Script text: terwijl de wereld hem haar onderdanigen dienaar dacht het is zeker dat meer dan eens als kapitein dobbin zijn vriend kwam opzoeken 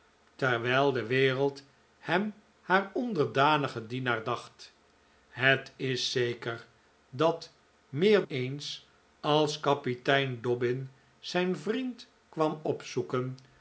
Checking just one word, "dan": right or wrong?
wrong